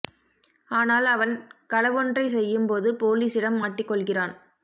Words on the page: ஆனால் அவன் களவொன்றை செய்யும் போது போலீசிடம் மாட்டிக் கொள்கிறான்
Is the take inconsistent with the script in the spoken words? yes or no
no